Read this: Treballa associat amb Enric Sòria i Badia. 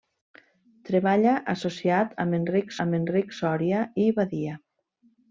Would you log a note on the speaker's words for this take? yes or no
yes